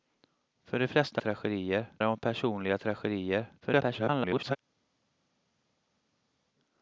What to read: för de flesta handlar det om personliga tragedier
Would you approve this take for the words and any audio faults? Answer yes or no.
no